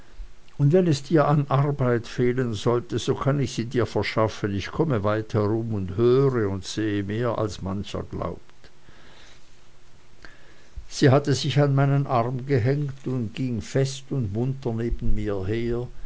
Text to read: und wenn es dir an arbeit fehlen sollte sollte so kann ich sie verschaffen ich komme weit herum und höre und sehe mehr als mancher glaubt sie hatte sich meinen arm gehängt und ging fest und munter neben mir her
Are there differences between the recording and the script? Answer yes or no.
yes